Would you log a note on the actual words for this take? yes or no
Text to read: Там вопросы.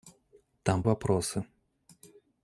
no